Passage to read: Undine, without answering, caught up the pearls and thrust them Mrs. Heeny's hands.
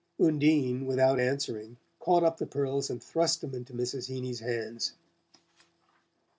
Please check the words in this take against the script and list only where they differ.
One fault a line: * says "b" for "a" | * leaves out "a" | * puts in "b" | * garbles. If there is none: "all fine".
* puts in "into"